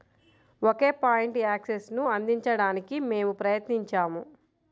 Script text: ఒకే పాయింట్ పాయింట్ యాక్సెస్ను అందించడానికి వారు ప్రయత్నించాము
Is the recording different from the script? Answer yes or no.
yes